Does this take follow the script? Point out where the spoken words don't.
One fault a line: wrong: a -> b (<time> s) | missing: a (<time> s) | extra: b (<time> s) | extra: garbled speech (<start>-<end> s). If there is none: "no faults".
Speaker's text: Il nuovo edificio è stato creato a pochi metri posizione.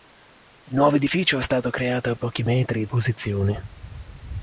no faults